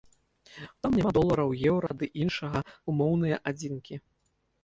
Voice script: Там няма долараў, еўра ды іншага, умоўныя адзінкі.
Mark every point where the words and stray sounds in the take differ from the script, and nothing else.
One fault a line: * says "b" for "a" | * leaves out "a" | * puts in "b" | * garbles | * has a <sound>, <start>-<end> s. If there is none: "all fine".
* has a dropout, 1.9-1.9 s